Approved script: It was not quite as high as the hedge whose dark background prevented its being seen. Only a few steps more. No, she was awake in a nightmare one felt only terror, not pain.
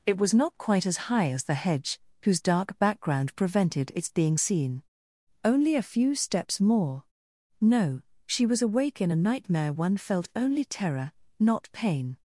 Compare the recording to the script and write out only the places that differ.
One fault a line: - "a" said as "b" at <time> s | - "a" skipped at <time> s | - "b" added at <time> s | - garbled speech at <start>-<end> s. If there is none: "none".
none